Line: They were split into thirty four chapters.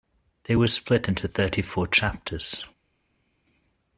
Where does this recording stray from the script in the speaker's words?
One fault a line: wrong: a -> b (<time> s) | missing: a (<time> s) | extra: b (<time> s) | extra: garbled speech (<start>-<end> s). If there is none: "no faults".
no faults